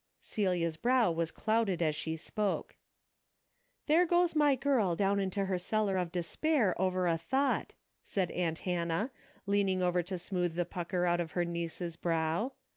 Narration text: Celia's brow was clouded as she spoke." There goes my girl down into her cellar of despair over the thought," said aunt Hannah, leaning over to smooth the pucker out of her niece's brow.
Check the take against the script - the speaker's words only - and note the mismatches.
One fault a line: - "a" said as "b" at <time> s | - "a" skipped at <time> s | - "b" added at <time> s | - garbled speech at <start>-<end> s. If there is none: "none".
- "the" said as "a" at 7.1 s